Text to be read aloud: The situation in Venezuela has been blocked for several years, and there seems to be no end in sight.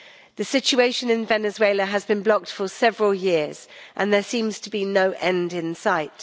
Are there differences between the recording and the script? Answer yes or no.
no